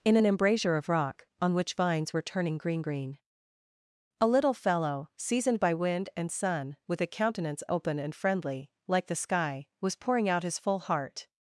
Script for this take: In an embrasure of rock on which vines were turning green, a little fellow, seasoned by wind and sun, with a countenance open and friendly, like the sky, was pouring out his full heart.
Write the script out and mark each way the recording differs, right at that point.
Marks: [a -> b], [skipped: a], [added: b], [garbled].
In an embrasure of rock on which vines were turning green, [added: green] a little fellow, seasoned by wind and sun, with a countenance open and friendly, like the sky, was pouring out his full heart.